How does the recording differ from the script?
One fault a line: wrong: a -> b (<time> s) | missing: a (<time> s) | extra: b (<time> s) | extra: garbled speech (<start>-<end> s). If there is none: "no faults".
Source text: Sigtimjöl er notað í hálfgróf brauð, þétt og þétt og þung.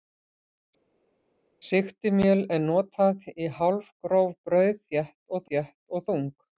no faults